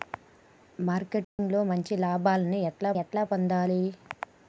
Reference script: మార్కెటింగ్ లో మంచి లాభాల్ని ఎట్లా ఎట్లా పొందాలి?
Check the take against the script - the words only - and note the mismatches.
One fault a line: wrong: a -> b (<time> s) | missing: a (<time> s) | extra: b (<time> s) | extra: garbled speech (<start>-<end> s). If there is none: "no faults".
no faults